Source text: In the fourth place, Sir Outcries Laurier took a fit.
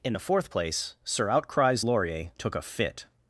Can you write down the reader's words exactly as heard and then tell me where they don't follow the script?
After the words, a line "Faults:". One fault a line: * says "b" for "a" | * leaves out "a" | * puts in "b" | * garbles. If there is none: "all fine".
In the fourth place, Sir Outcries Laurier took a fit.
Faults:
all fine